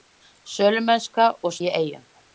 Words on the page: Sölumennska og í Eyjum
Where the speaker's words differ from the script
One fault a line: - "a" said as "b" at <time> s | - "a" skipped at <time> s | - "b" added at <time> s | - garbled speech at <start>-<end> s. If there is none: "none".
none